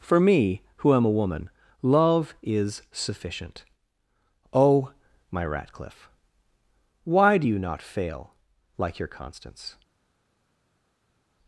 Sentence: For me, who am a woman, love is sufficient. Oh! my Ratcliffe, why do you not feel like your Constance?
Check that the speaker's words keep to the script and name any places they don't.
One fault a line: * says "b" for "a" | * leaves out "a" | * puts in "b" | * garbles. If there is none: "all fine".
* says "fail" for "feel"